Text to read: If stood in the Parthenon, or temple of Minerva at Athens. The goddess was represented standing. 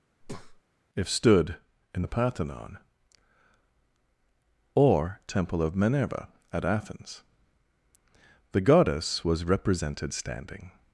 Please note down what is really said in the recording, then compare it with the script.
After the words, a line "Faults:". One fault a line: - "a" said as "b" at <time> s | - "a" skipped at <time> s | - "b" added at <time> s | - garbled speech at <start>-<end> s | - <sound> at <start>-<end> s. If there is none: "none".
If stood in the Parthenon, or temple of Minerva at Athens. The goddess was represented standing.
Faults:
- breath at 0.2-0.6 s